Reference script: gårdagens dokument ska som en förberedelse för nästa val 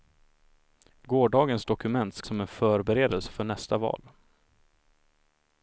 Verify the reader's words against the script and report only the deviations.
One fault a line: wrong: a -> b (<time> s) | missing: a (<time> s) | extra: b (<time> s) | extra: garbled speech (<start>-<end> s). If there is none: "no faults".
no faults